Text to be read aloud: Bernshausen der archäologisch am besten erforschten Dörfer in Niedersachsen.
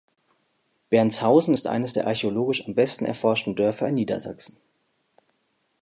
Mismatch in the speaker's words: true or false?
true